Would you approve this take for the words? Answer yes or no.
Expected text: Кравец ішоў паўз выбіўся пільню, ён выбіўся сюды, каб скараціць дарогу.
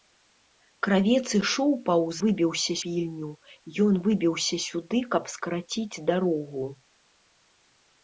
yes